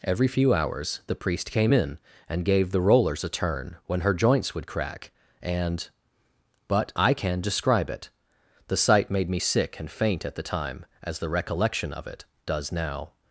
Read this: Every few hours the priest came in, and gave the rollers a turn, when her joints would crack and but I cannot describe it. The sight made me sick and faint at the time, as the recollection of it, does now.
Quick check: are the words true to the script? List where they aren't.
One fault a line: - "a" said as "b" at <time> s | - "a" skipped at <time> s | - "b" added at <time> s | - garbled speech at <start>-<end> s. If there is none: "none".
- "cannot" said as "can" at 7.1 s